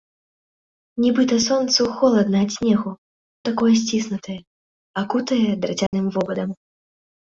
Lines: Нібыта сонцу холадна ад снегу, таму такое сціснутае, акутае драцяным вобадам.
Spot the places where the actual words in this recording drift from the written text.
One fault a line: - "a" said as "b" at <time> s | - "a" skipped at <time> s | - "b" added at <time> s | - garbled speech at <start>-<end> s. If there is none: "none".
- "таму" skipped at 2.9 s